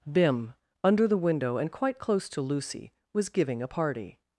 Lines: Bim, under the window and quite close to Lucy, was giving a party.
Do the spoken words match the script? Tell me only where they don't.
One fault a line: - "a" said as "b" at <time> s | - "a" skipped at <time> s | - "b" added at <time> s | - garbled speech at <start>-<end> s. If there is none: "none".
none